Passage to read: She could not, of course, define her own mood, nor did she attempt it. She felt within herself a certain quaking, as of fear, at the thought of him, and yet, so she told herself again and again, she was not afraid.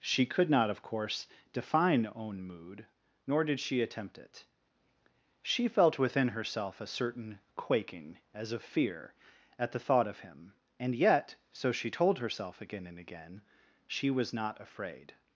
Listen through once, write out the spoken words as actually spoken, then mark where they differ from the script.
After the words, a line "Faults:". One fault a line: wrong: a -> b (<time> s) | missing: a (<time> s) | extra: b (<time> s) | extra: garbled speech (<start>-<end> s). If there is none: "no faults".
She could not, of course, define own mood, nor did she attempt it. She felt within herself a certain quaking, as of fear, at the thought of him, and yet, so she told herself again and again, she was not afraid.
Faults:
missing: her (2.1 s)